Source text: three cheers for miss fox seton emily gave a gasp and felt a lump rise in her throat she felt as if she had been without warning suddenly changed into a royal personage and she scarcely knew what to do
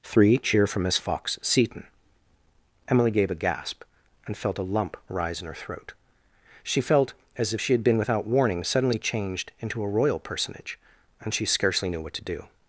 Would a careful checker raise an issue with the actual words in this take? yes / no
yes